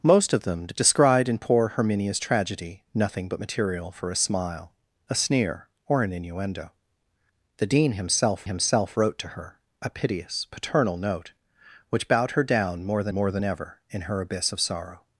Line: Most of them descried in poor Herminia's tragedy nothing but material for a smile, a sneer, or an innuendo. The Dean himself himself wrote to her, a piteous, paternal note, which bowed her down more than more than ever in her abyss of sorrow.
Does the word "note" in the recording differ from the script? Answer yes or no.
no